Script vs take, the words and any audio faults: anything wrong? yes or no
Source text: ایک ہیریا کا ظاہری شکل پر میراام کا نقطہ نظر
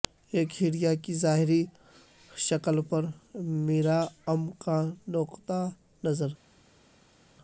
yes